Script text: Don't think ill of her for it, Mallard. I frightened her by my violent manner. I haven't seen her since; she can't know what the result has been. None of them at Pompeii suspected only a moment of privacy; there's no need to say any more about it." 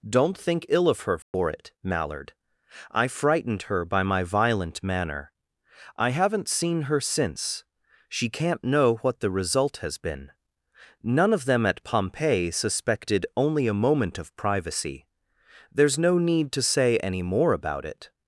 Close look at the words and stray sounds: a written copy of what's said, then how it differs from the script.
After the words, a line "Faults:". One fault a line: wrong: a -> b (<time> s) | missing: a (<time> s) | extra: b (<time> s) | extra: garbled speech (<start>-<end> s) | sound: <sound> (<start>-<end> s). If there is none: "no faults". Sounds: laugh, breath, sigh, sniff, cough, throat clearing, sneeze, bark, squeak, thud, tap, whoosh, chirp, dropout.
Don't think ill of her for it, Mallard. I frightened her by my violent manner. I haven't seen her since; she can't know what the result has been. None of them at Pompeii suspected only a moment of privacy; there's no need to say any more about it."
Faults:
sound: dropout (1.2-1.3 s)